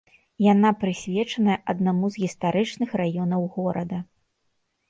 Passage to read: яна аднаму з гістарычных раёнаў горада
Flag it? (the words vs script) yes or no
yes